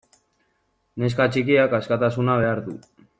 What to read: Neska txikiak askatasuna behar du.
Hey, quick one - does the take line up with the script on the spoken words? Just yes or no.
yes